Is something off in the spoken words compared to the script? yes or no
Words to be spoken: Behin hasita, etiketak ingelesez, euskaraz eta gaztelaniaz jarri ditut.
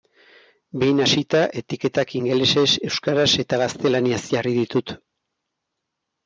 no